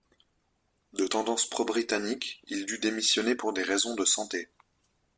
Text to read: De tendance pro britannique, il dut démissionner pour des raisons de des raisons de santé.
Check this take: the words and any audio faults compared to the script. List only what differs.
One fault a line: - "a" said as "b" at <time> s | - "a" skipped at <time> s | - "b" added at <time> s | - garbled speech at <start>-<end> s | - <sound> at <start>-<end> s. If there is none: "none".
- "des raisons de" skipped at 4.0 s